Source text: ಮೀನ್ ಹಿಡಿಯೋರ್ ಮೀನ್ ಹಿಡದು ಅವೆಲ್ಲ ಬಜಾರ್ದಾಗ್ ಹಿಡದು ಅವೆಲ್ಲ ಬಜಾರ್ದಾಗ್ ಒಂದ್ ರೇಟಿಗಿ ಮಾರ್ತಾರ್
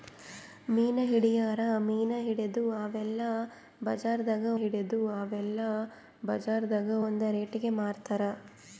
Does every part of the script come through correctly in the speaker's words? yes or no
yes